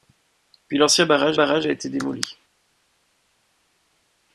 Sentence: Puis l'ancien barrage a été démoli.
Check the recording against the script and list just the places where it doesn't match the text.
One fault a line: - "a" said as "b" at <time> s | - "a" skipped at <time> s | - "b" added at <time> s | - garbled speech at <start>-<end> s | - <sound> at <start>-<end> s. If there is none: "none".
- "barrage" added at 1.3 s